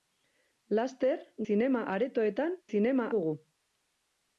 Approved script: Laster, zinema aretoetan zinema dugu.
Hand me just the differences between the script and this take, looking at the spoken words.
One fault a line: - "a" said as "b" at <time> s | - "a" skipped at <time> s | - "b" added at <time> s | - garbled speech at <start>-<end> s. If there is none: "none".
none